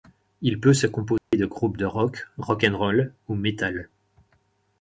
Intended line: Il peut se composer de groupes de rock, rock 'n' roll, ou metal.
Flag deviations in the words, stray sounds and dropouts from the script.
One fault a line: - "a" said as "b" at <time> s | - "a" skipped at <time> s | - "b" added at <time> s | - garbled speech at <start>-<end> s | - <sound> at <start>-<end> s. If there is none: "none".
- dropout at 1.2-1.3 s